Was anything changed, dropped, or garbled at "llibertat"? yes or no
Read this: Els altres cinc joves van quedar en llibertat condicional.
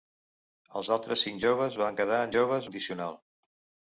yes